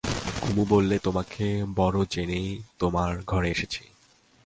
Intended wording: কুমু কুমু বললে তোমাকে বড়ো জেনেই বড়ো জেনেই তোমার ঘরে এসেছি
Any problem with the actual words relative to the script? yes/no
yes